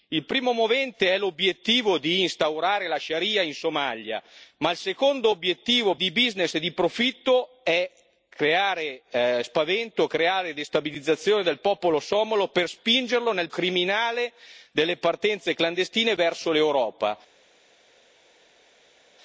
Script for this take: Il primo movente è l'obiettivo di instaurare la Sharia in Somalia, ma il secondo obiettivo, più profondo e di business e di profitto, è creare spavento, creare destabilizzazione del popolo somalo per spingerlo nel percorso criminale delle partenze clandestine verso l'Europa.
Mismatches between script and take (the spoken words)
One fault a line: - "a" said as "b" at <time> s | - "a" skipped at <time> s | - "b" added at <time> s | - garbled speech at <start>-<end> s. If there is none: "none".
- "più profondo e" skipped at 5.9 s
- "percorso" skipped at 13.5 s